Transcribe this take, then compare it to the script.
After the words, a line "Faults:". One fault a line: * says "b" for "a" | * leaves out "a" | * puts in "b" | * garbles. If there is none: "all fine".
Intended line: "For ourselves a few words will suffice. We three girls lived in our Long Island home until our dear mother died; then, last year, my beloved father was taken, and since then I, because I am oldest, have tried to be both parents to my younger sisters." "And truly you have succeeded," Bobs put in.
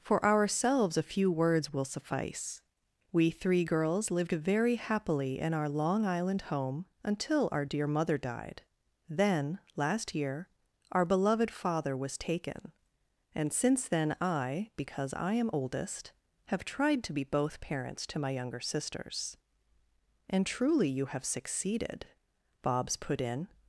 "For ourselves a few words will suffice. We three girls lived very happily in our Long Island home until our dear mother died; then, last year, our beloved father was taken, and since then I, because I am oldest, have tried to be both parents to my younger sisters." "And truly you have succeeded," Bobs put in.
Faults:
* puts in "very happily"
* says "our" for "my"